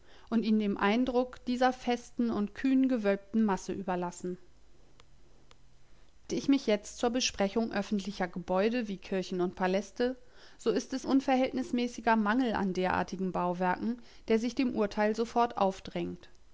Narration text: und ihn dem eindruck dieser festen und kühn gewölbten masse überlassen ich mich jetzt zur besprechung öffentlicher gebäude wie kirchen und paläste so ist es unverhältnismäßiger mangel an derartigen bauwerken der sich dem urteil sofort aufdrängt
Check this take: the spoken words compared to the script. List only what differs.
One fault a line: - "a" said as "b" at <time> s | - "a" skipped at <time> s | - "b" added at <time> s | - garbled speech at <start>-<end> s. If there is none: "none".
none